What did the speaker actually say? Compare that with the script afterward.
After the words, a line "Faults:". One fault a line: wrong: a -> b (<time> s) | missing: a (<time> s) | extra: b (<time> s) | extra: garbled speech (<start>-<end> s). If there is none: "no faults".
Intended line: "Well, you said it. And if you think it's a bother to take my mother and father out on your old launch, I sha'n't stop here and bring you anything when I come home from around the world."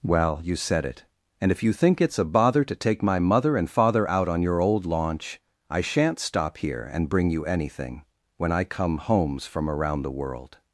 "Well, you said it. And if you think it's a bother to take my mother and father out on your old launch, I sha'n't stop here and bring you anything when I come homes from around the world."
Faults:
wrong: home -> homes (9.0 s)